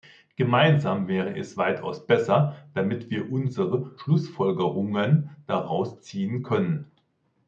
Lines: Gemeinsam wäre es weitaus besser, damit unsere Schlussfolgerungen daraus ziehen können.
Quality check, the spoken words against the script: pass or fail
fail